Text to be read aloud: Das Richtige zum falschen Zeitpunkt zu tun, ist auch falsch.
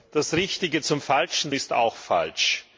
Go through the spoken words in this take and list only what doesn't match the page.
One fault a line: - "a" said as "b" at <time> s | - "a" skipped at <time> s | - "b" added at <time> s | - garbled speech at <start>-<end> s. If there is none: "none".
- "Zeitpunkt zu tun" skipped at 1.5 s